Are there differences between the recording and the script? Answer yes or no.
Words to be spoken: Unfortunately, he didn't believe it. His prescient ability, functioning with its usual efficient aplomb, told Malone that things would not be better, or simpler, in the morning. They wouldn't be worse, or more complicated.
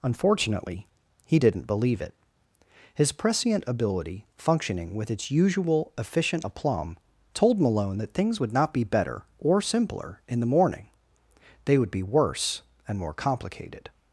yes